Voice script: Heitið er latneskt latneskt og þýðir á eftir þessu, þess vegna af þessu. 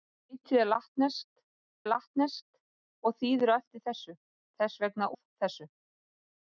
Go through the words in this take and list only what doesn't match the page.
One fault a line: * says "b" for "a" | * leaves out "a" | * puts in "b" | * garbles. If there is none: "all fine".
all fine